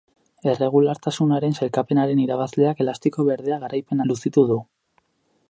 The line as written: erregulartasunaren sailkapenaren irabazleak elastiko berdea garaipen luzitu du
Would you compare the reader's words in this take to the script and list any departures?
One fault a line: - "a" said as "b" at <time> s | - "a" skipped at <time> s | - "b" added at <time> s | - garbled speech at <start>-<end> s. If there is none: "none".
none